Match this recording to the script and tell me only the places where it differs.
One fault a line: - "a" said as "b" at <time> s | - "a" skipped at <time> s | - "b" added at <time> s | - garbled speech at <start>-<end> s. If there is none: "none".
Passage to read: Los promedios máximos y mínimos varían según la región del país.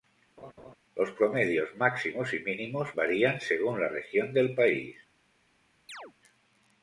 none